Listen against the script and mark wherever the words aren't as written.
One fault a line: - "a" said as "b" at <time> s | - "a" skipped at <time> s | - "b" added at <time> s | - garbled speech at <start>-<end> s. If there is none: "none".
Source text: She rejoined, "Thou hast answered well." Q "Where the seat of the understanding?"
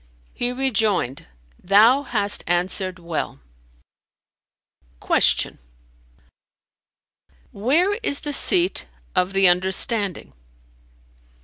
- "She" said as "He" at 0.3 s
- "is" added at 8.0 s